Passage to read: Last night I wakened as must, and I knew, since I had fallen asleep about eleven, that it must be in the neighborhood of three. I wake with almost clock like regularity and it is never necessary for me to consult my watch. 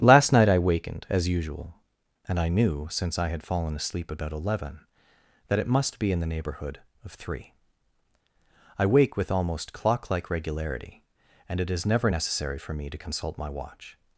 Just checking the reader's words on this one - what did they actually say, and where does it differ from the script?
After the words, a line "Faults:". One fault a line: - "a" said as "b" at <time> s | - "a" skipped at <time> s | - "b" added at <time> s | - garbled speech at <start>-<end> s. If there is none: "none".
Last night I wakened as usual, and I knew, since I had fallen asleep about eleven, that it must be in the neighborhood of three. I wake with almost clock like regularity and it is never necessary for me to consult my watch.
Faults:
- "must" said as "usual" at 1.3 s